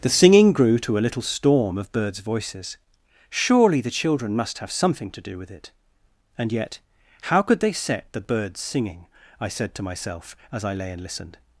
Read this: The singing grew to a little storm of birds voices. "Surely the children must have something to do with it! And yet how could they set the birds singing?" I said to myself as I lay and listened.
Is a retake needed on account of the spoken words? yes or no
no